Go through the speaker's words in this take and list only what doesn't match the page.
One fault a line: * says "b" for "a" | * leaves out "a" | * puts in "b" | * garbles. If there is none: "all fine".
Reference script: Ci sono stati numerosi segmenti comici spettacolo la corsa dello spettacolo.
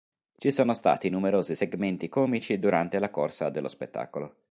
* says "durante" for "spettacolo"